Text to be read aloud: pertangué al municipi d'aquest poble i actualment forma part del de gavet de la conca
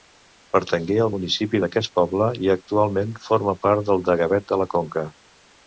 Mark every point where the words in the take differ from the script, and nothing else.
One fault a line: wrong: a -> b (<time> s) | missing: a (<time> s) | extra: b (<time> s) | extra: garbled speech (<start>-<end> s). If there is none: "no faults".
no faults